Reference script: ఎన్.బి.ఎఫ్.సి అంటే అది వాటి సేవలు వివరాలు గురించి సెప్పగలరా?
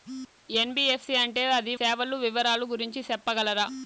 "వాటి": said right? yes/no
no